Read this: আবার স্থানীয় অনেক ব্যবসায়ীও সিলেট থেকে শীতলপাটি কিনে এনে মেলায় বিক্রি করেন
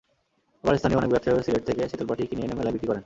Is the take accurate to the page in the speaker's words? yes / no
yes